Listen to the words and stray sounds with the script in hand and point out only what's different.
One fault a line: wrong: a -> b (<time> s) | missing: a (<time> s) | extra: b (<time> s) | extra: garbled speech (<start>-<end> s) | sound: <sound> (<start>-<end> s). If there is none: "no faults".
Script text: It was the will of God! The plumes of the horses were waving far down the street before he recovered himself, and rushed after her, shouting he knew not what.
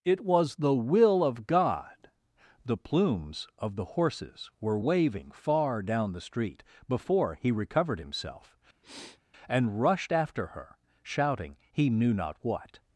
sound: sniff (8.8-9.2 s)